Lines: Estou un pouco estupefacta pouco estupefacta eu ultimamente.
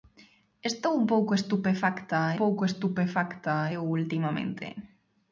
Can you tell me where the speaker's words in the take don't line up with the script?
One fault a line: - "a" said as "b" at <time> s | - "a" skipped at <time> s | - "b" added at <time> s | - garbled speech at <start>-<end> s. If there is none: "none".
none